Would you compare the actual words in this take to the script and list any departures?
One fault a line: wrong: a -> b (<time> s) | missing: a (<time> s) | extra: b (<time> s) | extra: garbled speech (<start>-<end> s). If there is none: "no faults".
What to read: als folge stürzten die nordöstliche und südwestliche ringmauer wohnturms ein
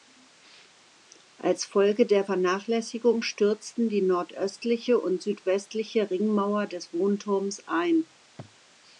extra: der vernachlässigung (2.1 s)
extra: des (6.7 s)